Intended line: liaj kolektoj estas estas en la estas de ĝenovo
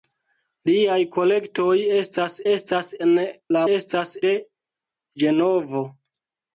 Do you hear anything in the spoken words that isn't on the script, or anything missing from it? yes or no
no